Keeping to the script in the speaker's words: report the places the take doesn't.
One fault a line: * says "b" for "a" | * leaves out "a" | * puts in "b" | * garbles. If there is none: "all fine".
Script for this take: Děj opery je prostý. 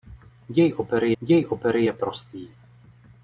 * puts in "děj opery"